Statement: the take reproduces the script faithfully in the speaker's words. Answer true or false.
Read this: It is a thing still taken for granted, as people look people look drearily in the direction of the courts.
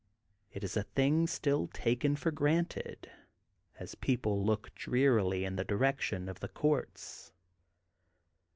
false